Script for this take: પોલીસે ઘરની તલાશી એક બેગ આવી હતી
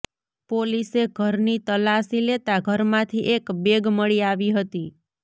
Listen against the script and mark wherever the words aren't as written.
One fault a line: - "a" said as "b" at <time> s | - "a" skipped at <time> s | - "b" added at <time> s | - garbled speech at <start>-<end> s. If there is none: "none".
- "લેતા ઘરમાંથી" added at 2.2 s
- "મળી" added at 4.0 s